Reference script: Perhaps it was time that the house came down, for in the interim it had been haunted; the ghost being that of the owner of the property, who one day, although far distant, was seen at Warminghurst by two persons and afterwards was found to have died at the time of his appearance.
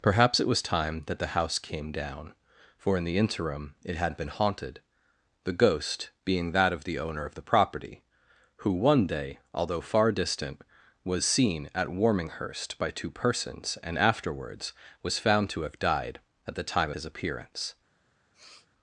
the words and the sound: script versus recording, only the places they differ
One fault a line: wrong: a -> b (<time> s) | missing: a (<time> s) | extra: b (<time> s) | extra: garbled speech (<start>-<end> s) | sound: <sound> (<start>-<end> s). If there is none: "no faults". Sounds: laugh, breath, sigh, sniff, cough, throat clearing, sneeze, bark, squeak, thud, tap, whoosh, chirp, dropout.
missing: of (16.9 s)
sound: sniff (18.3-18.7 s)